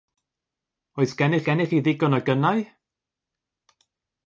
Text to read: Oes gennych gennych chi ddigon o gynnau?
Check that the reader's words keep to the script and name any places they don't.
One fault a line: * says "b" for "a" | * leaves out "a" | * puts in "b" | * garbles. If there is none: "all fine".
all fine